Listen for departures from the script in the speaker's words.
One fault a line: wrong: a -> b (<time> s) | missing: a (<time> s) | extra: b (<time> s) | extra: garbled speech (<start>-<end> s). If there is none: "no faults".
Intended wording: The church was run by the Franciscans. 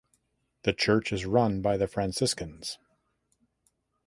wrong: was -> is (1.1 s)